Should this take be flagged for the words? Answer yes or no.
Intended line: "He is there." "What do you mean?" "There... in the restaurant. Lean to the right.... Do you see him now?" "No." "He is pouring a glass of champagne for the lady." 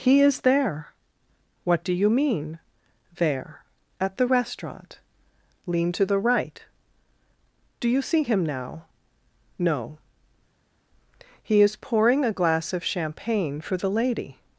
yes